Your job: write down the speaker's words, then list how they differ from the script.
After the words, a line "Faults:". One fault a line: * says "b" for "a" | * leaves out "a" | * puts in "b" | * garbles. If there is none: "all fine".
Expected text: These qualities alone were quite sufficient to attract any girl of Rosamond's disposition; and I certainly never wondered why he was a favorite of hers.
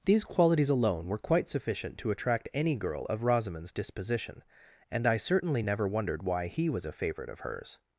These qualities alone were quite sufficient to attract any girl of Rosamond's disposition; and I certainly never wondered why he was a favorite of hers.
Faults:
all fine